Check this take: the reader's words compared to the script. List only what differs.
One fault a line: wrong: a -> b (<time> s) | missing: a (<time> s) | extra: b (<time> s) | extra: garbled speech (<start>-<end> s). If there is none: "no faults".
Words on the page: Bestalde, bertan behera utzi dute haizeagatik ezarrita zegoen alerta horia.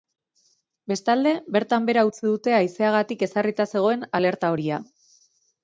no faults